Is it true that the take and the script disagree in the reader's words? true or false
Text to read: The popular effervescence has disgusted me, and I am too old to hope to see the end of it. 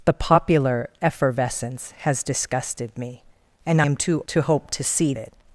true